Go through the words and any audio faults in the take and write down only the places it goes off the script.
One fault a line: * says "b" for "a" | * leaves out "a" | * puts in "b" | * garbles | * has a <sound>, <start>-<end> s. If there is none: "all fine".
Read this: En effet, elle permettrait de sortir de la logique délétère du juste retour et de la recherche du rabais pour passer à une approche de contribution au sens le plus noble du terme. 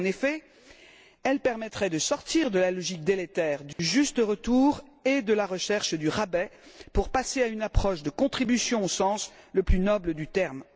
* has a dropout, 3.7-3.8 s